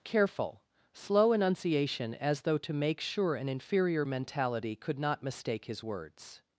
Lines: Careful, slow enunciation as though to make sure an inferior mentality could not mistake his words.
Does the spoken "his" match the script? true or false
true